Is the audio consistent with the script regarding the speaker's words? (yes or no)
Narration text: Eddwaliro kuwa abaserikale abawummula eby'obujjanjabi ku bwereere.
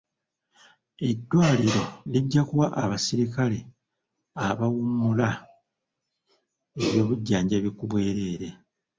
no